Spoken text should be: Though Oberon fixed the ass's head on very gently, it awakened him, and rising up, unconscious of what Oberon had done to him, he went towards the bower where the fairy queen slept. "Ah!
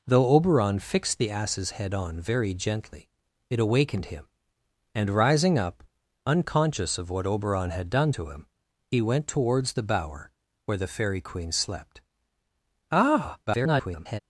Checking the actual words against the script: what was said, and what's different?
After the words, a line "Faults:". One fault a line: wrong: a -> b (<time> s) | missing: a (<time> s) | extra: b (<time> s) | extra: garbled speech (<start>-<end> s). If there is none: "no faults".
Though Oberon fixed the ass's head on very gently, it awakened him, and rising up, unconscious of what Oberon had done to him, he went towards the bower where the fairy queen slept. "Ah! [garbled]
Faults:
extra: garbled speech (13.5-14.2 s)